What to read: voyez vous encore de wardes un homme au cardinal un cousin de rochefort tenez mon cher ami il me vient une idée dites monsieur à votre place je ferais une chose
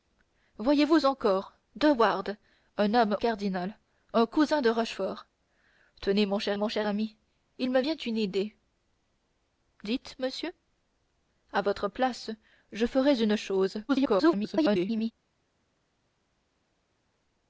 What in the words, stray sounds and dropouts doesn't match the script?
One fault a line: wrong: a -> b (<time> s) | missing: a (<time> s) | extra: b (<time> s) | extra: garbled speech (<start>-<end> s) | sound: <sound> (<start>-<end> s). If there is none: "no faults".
missing: au (3.1 s)
extra: mon cher (6.6 s)
extra: garbled speech (13.9-15.1 s)